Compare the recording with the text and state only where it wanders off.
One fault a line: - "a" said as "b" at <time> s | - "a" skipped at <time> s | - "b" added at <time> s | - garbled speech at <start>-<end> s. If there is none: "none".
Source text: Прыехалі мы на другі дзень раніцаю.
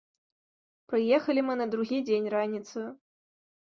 none